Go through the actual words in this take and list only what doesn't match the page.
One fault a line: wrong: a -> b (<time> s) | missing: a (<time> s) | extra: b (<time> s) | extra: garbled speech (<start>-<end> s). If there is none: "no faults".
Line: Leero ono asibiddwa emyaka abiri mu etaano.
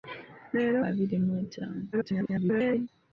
missing: ono asibiddwa emyaka (0.8 s)
extra: garbled speech (1.9-2.9 s)